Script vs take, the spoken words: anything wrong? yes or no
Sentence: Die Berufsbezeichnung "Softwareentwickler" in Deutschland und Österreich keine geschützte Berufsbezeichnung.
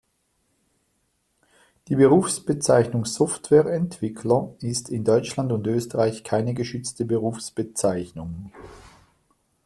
yes